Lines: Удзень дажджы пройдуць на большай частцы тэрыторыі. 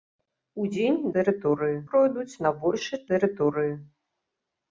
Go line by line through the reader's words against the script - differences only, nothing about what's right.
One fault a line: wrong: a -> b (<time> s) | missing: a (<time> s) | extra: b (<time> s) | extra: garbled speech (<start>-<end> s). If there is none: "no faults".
wrong: дажджы -> тэрыторыі (1.2 s)
missing: частцы (3.0 s)